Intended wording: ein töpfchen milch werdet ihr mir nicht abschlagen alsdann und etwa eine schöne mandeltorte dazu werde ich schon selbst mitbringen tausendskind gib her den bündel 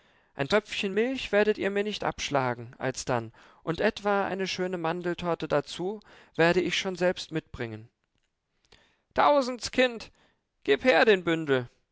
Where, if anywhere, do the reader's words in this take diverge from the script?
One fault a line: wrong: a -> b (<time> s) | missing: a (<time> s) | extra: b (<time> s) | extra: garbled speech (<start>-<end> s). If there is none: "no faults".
no faults